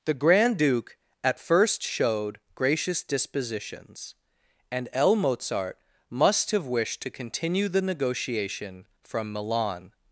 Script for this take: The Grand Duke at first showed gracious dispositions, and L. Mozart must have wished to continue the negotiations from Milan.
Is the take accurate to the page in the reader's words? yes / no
no